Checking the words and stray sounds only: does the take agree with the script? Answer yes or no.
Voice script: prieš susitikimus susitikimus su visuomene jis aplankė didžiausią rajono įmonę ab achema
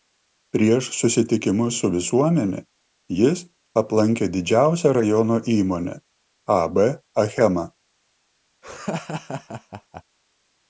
no